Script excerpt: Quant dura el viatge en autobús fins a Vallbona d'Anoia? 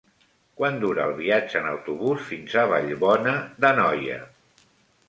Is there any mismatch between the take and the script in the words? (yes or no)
no